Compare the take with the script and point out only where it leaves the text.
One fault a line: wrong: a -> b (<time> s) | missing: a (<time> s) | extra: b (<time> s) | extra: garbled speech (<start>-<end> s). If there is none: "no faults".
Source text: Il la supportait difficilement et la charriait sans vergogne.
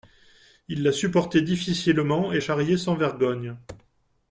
missing: la (2.4 s)